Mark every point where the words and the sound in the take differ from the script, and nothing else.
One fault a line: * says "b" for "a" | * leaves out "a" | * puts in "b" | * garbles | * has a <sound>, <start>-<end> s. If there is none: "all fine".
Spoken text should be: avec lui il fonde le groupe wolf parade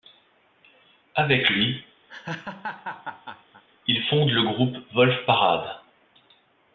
* has a laugh, 2.1-3.6 s